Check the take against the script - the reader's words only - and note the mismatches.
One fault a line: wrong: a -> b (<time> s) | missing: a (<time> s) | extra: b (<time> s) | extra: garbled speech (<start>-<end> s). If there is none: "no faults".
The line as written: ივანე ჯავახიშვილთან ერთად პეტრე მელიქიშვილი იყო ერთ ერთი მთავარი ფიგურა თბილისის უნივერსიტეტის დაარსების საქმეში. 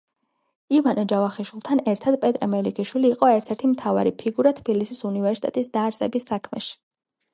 no faults